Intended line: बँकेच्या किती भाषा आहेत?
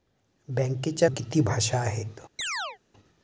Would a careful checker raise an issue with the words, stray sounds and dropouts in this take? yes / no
yes